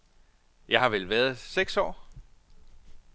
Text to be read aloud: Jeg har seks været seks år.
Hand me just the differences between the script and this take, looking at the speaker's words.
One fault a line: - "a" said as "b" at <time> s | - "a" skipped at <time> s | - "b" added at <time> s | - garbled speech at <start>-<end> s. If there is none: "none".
- "seks" said as "vel" at 0.9 s